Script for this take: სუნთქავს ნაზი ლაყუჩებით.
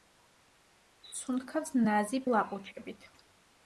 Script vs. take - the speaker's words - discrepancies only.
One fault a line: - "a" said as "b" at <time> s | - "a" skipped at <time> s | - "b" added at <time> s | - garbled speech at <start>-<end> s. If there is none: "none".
none